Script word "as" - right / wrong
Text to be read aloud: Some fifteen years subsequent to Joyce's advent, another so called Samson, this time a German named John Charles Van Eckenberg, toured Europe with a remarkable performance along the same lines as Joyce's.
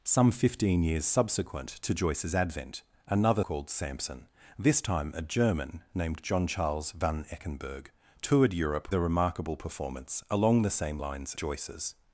wrong